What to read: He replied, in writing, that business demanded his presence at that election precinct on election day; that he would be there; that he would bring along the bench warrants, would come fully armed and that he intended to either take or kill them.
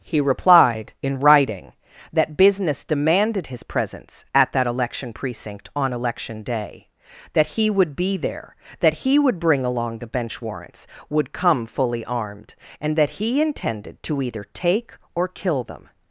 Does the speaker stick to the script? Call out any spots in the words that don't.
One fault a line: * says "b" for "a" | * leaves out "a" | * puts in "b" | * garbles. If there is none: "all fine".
all fine